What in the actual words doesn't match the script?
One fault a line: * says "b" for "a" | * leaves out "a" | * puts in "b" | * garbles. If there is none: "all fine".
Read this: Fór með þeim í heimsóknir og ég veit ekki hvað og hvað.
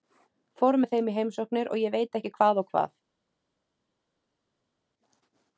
all fine